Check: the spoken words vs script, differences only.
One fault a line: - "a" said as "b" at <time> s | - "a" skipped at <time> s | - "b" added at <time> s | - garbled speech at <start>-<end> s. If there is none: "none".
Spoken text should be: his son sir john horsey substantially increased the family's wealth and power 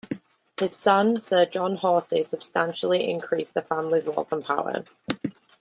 none